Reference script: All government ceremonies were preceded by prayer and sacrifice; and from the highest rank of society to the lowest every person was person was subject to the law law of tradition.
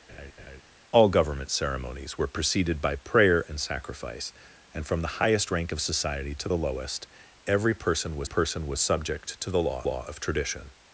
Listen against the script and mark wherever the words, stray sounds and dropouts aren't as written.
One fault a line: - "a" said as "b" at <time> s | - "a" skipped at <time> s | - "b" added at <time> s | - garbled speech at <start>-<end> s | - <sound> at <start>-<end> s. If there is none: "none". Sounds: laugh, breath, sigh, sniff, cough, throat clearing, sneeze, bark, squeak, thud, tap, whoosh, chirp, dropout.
- laugh at 0.1-0.6 s